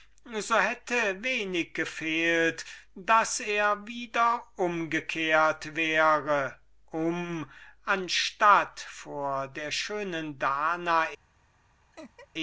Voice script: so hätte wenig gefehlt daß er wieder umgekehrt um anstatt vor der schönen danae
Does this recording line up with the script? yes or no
no